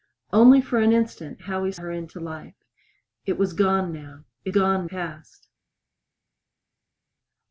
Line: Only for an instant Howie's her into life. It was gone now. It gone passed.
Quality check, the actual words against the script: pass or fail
pass